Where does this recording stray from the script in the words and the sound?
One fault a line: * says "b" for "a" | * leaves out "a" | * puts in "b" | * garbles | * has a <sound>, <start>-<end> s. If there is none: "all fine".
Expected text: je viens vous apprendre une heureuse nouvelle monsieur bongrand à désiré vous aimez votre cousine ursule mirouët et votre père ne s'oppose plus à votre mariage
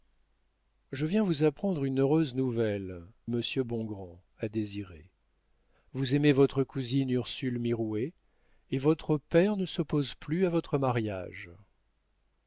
all fine